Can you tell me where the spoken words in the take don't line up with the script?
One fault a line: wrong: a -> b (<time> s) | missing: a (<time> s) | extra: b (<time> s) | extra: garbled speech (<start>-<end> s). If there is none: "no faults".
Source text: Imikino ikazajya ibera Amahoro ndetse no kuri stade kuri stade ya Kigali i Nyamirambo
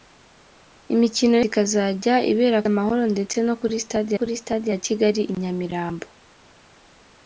no faults